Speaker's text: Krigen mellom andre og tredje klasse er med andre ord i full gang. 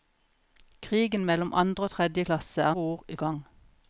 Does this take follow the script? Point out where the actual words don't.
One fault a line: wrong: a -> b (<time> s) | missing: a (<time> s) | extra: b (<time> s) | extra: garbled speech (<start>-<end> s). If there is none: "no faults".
missing: med andre (2.7 s)
missing: full (3.2 s)